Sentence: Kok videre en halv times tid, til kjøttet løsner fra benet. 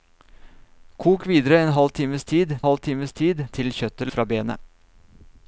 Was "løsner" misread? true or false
true